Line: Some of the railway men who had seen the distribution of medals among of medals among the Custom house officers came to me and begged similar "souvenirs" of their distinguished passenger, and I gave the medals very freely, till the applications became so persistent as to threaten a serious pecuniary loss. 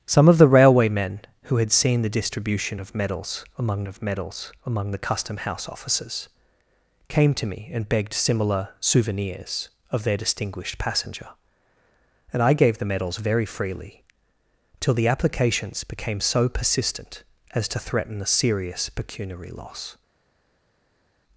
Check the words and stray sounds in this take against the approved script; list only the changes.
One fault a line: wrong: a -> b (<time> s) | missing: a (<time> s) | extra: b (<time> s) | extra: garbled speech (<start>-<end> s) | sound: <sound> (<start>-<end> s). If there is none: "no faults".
no faults